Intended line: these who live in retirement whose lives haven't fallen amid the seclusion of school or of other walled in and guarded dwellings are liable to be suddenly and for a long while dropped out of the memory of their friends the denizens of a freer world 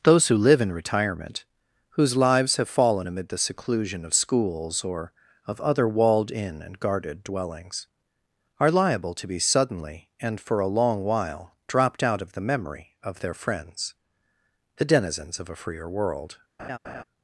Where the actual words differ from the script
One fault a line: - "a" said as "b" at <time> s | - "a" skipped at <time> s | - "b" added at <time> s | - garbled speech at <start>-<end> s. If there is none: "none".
- "these" said as "those" at 0.0 s
- "haven't" said as "have" at 2.6 s
- "school" said as "schools" at 4.1 s